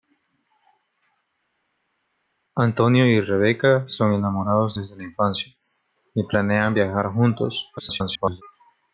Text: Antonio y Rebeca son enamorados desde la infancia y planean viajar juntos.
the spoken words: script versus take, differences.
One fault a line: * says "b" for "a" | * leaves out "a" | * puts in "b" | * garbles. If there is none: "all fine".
* garbles